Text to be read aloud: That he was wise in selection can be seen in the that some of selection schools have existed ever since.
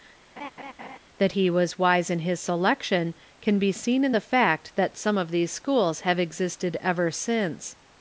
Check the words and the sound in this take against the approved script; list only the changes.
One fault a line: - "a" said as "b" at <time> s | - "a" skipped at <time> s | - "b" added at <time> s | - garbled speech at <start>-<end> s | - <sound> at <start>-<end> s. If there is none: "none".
- laugh at 0.4-1.0 s
- "his" added at 2.2 s
- "fact" added at 4.2 s
- "selection" said as "these" at 5.3 s